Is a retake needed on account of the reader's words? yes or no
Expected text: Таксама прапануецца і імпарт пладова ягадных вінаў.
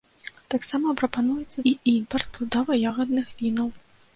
no